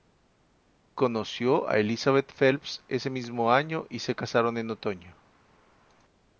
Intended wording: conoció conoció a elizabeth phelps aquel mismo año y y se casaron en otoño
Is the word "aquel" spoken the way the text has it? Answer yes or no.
no